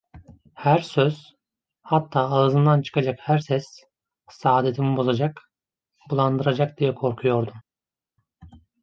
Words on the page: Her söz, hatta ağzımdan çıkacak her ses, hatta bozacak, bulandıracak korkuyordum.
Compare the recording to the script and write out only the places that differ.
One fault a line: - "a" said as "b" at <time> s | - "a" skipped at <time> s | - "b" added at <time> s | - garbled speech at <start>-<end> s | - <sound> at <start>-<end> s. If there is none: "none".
- "hatta" said as "saadetimi" at 4.3 s
- "diye" added at 6.8 s